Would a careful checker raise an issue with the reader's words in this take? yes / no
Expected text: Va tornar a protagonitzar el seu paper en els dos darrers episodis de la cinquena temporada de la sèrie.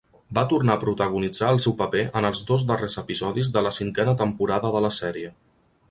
no